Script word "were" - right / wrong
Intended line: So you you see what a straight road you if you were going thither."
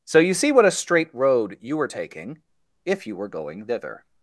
right